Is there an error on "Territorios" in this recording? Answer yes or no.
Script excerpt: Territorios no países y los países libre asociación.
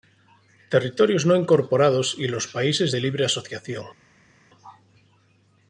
no